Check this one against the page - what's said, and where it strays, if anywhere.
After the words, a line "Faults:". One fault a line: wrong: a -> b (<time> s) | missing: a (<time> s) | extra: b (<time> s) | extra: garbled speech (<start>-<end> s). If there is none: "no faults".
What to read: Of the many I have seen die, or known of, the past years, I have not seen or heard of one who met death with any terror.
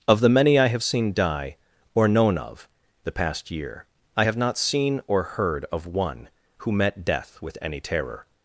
Of the many I have seen die, or known of, the past year, I have not seen or heard of one who met death with any terror.
Faults:
wrong: years -> year (3.5 s)